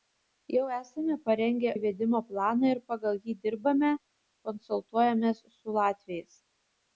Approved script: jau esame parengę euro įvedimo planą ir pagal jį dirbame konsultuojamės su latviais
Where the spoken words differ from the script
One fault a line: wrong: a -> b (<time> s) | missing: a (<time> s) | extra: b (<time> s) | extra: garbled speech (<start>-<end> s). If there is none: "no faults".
missing: euro (1.7 s)